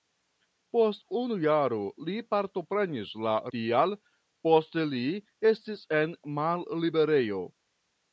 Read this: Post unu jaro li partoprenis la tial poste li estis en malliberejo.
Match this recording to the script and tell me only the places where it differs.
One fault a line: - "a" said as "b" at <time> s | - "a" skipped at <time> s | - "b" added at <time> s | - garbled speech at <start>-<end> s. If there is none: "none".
none